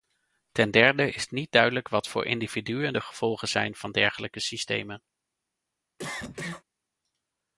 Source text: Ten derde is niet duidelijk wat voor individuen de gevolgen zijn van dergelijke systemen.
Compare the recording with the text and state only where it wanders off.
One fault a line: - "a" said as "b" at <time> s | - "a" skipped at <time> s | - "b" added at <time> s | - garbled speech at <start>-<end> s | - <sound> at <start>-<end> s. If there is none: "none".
- cough at 6.0-6.6 s